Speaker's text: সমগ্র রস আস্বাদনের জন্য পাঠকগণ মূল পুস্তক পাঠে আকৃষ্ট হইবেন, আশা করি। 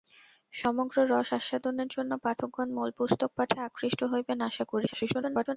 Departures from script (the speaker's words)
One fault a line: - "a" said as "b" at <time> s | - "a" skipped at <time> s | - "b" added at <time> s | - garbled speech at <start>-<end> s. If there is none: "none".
- garbled speech at 4.9-5.6 s